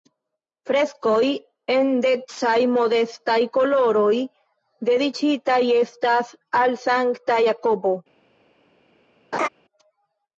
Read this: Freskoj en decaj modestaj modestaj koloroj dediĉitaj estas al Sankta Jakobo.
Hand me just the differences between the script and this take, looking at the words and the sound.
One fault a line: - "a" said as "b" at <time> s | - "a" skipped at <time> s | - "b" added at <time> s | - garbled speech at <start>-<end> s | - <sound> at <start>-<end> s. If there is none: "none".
- "modestaj" skipped at 3.4 s
- laugh at 9.3-9.5 s